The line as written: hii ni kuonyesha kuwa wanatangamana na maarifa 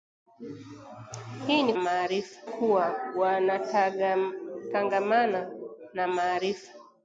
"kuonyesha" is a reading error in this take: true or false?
true